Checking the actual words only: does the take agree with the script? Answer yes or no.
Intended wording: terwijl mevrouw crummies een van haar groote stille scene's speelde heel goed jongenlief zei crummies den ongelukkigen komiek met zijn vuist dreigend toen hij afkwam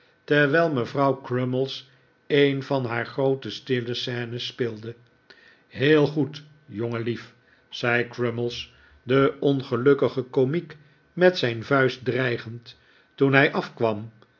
yes